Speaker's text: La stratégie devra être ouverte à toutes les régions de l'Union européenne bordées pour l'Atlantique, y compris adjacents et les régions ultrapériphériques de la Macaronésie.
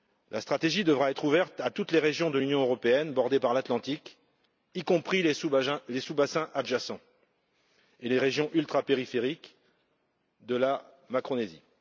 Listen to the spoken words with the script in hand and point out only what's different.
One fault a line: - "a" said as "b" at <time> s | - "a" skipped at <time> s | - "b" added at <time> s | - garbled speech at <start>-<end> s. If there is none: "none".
- "pour" said as "par" at 3.4 s
- "les sous bassins" added at 5.2 s